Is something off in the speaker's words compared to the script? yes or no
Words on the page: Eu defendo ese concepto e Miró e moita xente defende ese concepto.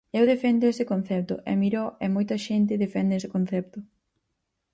no